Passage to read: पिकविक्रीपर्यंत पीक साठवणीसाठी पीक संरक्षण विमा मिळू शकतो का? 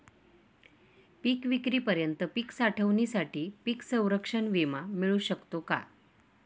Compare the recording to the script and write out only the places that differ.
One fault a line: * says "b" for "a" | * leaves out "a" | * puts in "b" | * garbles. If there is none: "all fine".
all fine